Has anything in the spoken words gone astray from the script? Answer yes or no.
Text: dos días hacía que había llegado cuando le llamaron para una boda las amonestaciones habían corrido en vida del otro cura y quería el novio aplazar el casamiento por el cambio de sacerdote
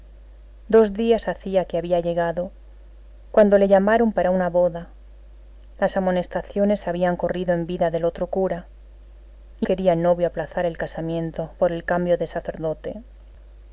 no